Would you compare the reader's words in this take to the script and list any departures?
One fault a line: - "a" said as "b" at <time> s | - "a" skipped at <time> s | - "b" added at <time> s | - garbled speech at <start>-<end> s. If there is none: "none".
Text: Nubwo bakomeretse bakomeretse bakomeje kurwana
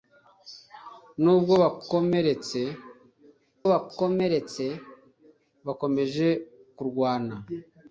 none